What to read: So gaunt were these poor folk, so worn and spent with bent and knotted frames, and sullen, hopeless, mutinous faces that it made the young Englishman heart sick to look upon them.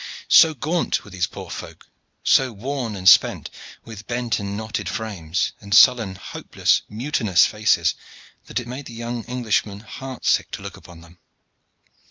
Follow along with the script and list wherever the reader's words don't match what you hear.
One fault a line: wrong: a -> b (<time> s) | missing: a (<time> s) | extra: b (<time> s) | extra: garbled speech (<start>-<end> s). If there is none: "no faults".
no faults